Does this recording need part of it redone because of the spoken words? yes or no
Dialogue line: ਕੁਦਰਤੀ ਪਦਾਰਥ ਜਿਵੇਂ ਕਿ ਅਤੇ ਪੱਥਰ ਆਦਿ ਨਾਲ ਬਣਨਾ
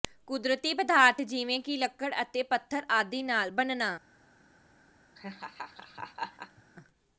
yes